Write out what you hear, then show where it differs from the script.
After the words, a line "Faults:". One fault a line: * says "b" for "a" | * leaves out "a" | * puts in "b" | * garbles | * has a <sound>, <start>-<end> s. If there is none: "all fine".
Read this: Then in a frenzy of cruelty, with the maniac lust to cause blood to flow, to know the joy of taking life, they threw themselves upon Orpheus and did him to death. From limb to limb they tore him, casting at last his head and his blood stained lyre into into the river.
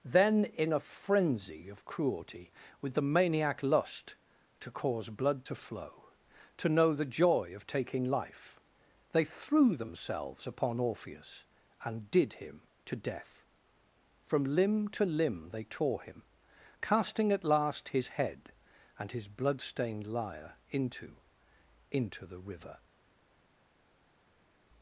Then in a frenzy of cruelty, with the maniac lust to cause blood to flow, to know the joy of taking life, they threw themselves upon Orpheus and did him to death. From limb to limb they tore him, casting at last his head and his blood stained lyre into into the river.
Faults:
all fine